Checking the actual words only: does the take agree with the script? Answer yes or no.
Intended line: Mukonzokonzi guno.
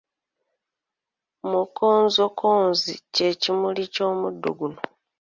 no